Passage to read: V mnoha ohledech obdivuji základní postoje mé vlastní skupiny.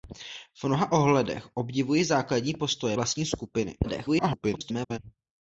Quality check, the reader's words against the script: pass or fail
fail